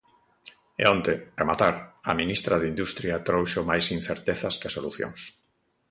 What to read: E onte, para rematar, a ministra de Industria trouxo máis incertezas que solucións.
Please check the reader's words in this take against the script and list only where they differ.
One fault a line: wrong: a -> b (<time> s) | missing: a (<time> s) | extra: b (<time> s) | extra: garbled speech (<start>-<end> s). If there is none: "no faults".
missing: para (1.1 s)